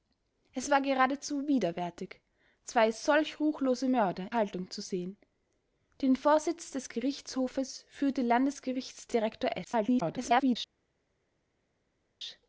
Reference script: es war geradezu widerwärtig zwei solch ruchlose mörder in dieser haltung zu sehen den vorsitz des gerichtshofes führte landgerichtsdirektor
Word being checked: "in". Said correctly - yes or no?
no